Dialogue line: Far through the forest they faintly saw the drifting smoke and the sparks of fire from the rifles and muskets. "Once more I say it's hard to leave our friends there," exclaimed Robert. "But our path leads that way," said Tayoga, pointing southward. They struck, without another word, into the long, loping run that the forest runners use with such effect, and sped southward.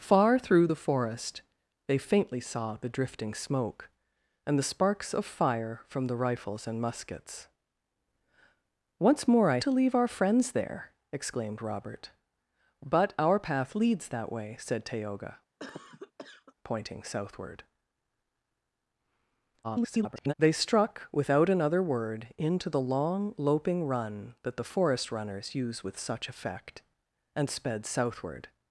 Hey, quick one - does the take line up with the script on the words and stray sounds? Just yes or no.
no